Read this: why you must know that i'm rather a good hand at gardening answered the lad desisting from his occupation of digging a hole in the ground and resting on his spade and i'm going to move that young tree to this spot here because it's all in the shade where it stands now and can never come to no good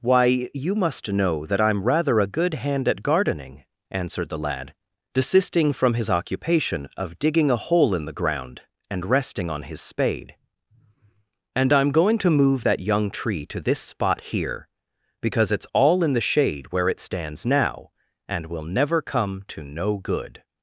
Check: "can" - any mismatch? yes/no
yes